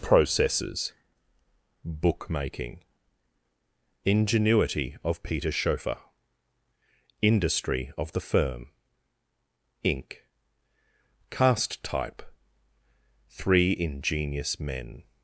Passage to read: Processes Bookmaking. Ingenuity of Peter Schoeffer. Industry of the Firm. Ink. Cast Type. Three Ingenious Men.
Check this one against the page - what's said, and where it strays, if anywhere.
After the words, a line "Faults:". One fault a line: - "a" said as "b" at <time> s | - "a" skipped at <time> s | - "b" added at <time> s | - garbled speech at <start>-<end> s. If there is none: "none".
Processes Bookmaking. Ingenuity of Peter Schoeffer. Industry of the Firm. Ink. Cast Type. Three Ingenious Men.
Faults:
none